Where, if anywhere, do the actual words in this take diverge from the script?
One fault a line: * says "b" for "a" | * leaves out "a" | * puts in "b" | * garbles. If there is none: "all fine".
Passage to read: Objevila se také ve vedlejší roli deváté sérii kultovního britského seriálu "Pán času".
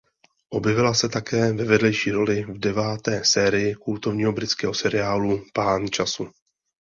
* puts in "v"